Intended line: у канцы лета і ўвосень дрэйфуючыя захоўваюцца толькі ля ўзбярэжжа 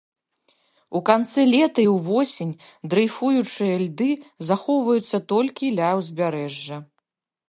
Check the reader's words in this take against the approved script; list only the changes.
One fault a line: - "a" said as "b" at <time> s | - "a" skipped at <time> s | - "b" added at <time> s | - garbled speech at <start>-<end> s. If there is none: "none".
- "льды" added at 3.8 s